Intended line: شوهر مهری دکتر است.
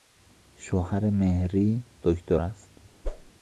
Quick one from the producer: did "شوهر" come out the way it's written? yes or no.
yes